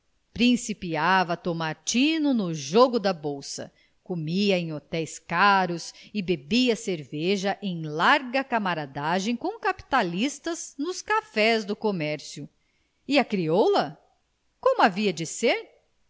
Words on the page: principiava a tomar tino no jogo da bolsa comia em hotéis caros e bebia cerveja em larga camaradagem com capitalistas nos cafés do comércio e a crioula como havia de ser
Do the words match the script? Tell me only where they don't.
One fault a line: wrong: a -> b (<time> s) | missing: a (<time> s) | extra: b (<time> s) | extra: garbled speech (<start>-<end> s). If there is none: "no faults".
no faults